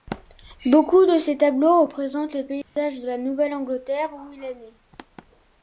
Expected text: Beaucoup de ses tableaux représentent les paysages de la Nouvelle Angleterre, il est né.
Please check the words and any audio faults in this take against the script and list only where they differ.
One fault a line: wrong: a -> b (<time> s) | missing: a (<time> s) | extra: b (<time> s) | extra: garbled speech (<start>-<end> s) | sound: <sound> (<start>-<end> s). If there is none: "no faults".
sound: dropout (2.6-2.8 s)
extra: où (4.1 s)